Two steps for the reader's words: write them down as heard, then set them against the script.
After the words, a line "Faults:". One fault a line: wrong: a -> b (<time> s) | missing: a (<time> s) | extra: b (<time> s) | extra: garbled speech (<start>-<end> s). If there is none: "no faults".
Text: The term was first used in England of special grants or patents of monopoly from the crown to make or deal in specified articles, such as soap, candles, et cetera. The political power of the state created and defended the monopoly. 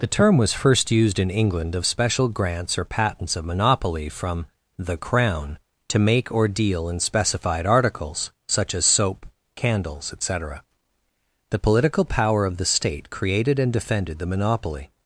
The term was first used in England of special grants or patents of monopoly from the crown to make or deal in specified articles, such as soap, candles, et cetera. The political power of the state created and defended the monopoly.
Faults:
no faults